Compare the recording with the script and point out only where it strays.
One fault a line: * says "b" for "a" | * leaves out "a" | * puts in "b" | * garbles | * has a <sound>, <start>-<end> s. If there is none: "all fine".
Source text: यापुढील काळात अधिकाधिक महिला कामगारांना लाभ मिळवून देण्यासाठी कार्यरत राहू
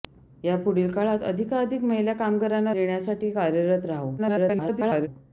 * leaves out "लाभ मिळवून"
* garbles